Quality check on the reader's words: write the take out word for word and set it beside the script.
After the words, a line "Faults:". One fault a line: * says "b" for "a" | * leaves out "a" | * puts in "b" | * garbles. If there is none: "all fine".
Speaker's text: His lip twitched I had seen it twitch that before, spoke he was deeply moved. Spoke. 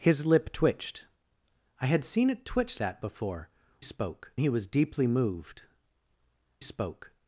His lip twitched I had seen it twitch that before, spoke he was deeply moved. Spoke.
Faults:
all fine